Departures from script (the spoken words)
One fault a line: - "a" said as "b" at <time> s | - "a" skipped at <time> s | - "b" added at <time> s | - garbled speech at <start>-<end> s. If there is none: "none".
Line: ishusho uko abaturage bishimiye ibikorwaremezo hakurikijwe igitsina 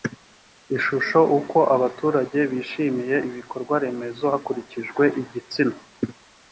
none